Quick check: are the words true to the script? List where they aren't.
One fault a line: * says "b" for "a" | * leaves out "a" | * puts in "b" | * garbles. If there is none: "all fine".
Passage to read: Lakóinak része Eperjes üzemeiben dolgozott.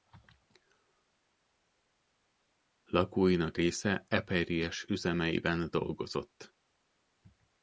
all fine